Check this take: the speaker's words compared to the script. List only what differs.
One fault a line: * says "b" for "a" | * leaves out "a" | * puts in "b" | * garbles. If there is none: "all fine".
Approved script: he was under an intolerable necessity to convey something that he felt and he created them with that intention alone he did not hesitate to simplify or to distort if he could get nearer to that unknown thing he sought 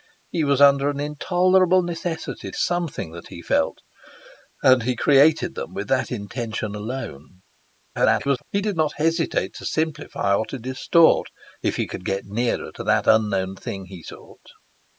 * leaves out "to convey"
* garbles